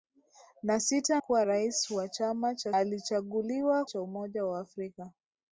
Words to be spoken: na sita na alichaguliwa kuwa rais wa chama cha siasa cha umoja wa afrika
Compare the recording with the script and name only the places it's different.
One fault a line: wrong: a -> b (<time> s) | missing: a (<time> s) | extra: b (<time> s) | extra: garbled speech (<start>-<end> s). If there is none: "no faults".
missing: na alichaguliwa (1.2 s)
wrong: siasa -> alichaguliwa (2.7 s)